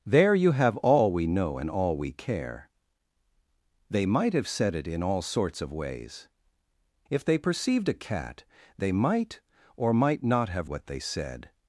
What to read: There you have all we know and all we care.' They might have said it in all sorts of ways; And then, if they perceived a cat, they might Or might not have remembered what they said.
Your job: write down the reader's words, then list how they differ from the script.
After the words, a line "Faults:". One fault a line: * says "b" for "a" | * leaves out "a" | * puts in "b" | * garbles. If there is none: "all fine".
There you have all we know and all we care.' They might have said it in all sorts of ways; If they perceived a cat, they might Or might not have what they said.
Faults:
* leaves out "And then"
* leaves out "remembered"